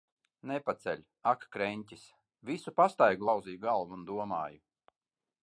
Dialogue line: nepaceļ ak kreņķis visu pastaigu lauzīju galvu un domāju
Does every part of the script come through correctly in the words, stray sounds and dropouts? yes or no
yes